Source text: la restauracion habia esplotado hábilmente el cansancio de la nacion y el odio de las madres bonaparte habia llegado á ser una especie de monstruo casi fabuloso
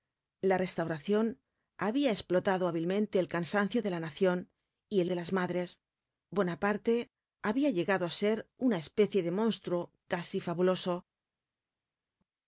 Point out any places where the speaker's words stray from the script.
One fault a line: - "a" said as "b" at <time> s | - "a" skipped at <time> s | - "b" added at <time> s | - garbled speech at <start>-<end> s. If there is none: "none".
- "odio" skipped at 5.1 s